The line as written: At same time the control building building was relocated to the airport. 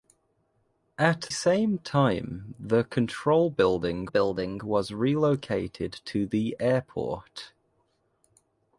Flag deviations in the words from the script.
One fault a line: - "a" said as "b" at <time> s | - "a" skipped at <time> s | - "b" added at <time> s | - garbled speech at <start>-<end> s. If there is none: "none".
none